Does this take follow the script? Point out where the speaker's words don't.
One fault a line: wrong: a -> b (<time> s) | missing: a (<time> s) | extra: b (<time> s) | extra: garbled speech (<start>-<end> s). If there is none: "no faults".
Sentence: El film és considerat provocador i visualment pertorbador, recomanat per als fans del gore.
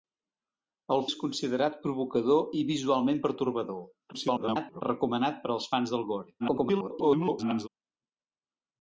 missing: film (1.0 s)
extra: garbled speech (4.1-4.8 s)
extra: garbled speech (6.4-7.7 s)